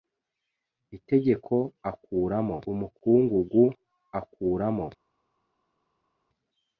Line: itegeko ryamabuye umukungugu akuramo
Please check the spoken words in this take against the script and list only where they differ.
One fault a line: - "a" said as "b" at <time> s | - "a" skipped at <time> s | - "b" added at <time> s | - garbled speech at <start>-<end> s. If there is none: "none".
- "ryamabuye" said as "akuramo" at 1.9 s